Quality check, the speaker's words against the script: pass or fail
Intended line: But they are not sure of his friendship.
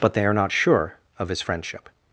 pass